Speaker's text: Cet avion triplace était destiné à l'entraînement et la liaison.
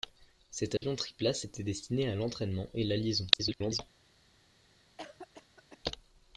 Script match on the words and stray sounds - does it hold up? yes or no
no